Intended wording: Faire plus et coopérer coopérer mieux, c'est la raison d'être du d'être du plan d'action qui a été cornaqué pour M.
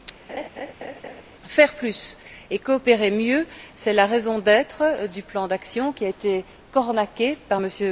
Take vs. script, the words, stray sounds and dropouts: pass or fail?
fail